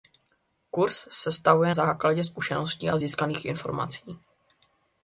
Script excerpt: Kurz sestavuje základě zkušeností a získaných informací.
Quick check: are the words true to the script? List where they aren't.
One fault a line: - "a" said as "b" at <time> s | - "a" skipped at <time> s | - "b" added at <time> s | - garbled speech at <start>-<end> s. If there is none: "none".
none